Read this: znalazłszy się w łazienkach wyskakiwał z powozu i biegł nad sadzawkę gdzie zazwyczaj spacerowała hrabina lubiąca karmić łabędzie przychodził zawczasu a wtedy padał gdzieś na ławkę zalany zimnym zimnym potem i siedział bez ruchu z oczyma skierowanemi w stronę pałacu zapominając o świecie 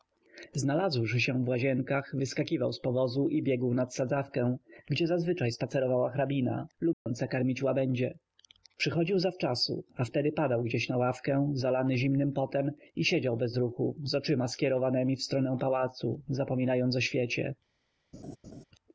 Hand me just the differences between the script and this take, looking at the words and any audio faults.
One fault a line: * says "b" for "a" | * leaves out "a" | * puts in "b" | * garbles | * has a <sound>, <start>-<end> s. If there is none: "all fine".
* has a dropout, 6.9-7.1 s
* leaves out "zimnym"
* has a laugh, 18.1-18.6 s